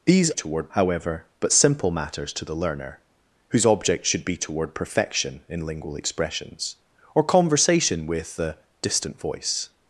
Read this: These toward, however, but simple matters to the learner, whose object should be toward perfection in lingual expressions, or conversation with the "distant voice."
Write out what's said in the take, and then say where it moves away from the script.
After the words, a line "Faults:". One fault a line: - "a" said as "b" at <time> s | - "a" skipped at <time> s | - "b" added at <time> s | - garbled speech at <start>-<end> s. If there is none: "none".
These toward, however, but simple matters to the learner, whose object should be toward perfection in lingual expressions, or conversation with the "distant voice."
Faults:
none